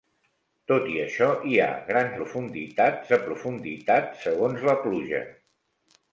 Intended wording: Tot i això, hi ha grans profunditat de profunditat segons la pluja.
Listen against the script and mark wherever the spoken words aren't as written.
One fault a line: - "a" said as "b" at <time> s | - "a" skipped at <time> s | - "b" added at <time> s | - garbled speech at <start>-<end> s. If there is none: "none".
none